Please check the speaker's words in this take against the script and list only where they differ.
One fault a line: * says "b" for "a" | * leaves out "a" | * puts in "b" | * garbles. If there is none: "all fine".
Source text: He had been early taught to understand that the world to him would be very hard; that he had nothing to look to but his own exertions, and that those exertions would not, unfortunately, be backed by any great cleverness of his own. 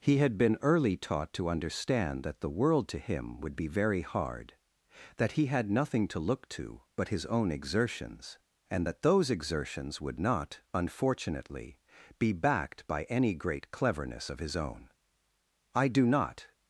* puts in "I do not"